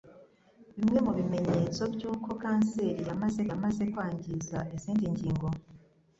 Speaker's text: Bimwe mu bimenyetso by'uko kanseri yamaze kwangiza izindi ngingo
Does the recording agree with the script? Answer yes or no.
no